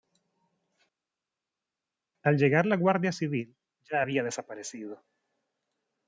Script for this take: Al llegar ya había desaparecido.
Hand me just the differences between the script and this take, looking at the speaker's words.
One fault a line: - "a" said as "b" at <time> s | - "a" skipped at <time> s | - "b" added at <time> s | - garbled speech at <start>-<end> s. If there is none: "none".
- "la Guardia Civil" added at 2.6 s